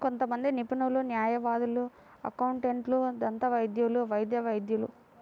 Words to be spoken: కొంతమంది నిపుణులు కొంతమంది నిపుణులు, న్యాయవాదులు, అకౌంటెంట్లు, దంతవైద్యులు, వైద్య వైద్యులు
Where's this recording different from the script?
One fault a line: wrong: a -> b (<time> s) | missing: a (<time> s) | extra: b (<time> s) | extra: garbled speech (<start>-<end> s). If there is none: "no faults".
missing: కొంతమంది నిపుణులు (1.0 s)